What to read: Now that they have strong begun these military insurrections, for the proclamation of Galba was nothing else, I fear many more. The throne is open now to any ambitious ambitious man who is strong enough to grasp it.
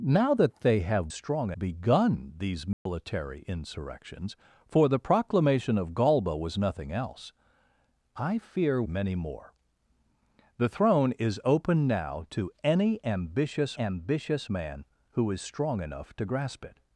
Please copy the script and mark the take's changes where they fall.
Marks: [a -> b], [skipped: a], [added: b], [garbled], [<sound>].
Now that they have strong begun these military [dropout] insurrections, for the proclamation of Galba was nothing else, I fear many more. The throne is open now to any ambitious ambitious man who is strong enough to grasp it.